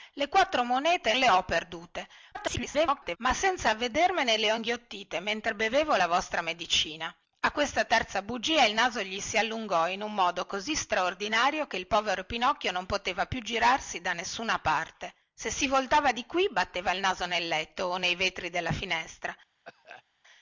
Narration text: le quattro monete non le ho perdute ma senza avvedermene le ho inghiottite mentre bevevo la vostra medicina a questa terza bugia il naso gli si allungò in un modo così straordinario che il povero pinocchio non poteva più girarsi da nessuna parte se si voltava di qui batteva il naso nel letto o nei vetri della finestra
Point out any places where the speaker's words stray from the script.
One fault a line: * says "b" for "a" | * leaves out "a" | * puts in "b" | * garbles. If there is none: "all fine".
* leaves out "non"
* garbles